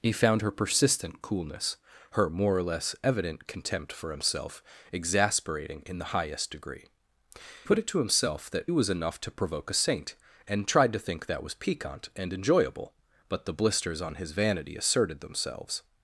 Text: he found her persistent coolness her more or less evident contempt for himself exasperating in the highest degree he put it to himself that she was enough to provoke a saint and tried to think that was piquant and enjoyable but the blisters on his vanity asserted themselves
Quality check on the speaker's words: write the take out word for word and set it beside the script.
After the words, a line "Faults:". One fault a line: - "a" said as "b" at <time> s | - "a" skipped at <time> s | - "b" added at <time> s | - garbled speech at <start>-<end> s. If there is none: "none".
he found her persistent coolness her more or less evident contempt for himself exasperating in the highest degree put it to himself that was enough to provoke a saint and tried to think that was piquant and enjoyable but the blisters on his vanity asserted themselves
Faults:
- "he" skipped at 6.9 s
- "she" skipped at 8.7 s